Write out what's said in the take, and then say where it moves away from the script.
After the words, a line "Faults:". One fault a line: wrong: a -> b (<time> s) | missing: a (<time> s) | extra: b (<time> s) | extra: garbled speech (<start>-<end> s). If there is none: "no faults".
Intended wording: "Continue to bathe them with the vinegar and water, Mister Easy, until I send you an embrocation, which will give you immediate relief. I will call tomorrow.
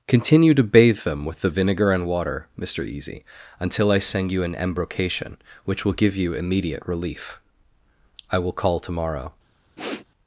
"Continue to bathe them with the vinegar and water, Mister Easy, until I send you an embrocation, which will give you immediate relief. I will call tomorrow.
Faults:
no faults